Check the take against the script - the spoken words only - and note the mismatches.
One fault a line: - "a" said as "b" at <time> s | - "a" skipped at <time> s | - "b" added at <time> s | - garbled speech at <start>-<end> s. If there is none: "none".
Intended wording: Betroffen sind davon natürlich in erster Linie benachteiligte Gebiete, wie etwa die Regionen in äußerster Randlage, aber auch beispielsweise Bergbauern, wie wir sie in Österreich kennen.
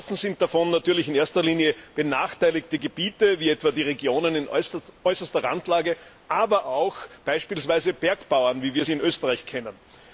none